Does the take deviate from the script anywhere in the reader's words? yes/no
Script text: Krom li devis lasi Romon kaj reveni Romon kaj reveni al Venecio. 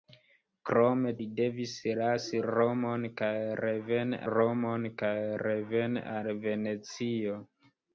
no